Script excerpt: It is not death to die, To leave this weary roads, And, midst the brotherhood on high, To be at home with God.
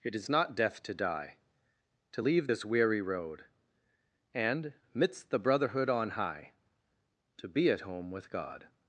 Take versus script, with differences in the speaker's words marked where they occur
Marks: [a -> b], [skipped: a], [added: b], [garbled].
It is not death to die, To leave this weary [roads, -> road] And, midst the brotherhood on high, To be at home with God.